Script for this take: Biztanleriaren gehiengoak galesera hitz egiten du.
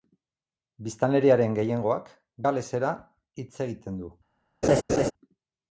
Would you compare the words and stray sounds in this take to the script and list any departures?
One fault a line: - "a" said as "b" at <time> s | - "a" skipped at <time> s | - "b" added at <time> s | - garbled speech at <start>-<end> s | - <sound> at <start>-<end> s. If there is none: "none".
- laugh at 4.6-5.1 s